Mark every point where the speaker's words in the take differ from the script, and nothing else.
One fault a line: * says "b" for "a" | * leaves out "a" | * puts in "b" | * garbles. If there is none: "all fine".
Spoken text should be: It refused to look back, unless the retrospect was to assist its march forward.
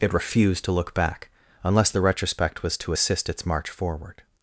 all fine